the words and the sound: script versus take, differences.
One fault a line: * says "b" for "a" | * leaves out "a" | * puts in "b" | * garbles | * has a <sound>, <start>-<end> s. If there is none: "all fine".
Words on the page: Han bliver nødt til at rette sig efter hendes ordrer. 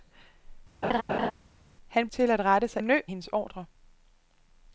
* has a laugh, 0.8-1.3 s
* leaves out "bliver nødt"
* says "nødt" for "efter"